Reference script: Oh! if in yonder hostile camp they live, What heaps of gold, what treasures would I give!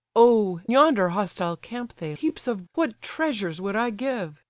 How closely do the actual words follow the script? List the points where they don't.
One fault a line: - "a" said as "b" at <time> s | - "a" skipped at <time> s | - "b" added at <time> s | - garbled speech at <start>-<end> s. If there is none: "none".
- "if in" skipped at 0.6 s
- "live What" skipped at 2.2 s
- "gold" skipped at 2.6 s